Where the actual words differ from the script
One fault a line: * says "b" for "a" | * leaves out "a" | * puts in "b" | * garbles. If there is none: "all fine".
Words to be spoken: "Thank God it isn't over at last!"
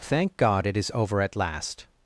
* says "is" for "isn't"